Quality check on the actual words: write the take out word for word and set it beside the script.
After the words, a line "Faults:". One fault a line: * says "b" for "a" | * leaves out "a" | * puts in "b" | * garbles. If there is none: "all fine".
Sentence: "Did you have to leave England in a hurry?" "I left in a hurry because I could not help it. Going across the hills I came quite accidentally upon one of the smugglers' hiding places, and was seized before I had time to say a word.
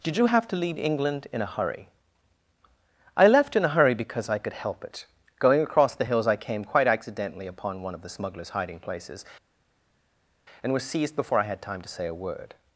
"Did you have to leave England in a hurry?" "I left in a hurry because I could help it. Going across the hills I came quite accidentally upon one of the smugglers' hiding places, and was seized before I had time to say a word.
Faults:
* leaves out "not"